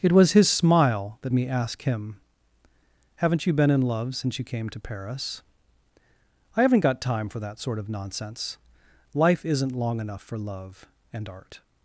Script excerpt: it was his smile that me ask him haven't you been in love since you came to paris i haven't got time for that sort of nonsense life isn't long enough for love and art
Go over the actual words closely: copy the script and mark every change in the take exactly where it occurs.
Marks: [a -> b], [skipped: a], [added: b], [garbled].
it was his smile that me ask him haven't you been in love since you came to paris i haven't got time for that sort of nonsense life isn't long enough for love and art